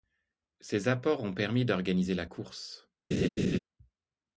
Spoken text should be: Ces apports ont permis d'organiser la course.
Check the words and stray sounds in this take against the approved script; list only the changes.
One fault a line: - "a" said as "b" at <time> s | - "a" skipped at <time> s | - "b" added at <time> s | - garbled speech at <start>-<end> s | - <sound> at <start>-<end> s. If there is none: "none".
- laugh at 3.1-3.6 s